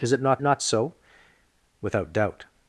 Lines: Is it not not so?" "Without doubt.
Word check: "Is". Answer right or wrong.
right